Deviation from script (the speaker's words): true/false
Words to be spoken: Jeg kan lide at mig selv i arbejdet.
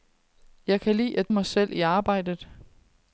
false